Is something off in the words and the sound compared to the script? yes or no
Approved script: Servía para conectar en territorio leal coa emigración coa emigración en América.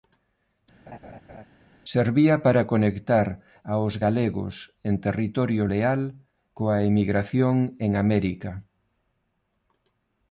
yes